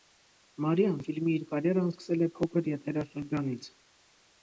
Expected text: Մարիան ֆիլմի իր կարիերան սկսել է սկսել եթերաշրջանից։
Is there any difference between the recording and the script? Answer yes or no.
yes